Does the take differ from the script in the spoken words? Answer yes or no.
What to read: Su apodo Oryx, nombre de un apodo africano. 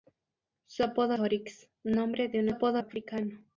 no